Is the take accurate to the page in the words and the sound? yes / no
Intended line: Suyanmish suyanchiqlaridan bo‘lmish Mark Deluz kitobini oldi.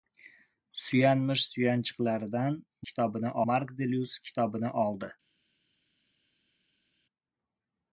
no